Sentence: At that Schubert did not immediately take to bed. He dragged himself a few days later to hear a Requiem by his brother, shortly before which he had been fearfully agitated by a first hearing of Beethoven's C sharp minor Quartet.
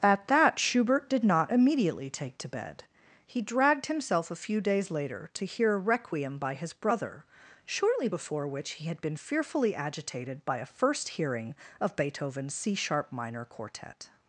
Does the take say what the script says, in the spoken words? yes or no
yes